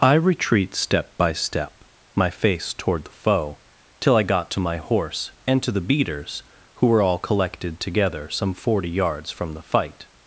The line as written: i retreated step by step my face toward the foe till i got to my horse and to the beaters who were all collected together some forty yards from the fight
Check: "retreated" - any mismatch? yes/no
yes